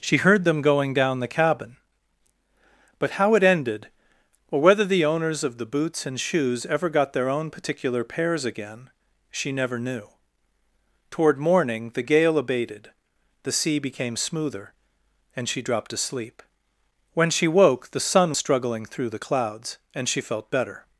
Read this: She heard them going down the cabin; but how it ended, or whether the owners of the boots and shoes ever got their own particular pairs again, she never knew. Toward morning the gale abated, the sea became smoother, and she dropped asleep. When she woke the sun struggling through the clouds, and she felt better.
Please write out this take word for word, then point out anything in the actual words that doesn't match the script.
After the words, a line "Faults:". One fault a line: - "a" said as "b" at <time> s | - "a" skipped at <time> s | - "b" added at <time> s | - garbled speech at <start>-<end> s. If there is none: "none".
She heard them going down the cabin; but how it ended, or whether the owners of the boots and shoes ever got their own particular pairs again, she never knew. Toward morning the gale abated, the sea became smoother, and she dropped asleep. When she woke the sun struggling through the clouds, and she felt better.
Faults:
none